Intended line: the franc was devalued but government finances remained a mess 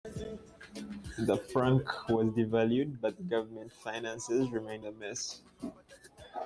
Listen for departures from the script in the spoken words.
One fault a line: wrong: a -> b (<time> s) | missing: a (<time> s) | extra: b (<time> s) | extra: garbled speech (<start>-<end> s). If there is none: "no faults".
no faults